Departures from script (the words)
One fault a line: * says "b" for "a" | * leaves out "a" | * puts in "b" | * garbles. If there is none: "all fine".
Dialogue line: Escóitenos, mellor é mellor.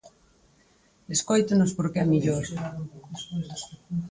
* says "porque" for "mellor"